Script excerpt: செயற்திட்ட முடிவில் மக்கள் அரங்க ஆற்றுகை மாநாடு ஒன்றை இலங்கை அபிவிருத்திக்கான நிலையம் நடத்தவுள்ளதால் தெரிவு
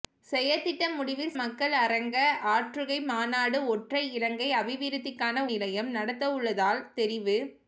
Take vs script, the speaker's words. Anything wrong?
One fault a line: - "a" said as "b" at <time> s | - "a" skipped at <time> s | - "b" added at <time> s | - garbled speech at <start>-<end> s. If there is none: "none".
none